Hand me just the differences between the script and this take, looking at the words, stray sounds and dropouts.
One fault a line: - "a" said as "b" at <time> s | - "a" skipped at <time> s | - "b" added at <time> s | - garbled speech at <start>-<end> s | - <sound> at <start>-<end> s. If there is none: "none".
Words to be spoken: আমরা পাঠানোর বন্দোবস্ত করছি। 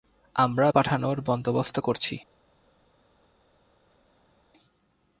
none